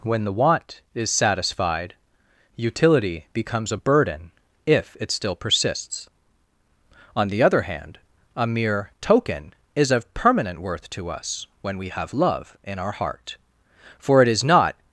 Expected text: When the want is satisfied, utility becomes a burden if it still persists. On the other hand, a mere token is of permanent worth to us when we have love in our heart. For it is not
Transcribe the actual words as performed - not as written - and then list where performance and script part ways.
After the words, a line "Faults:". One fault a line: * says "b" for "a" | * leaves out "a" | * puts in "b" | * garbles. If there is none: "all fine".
When the want is satisfied, utility becomes a burden if it still persists. On the other hand, a mere token is of permanent worth to us when we have love in our heart. For it is not
Faults:
all fine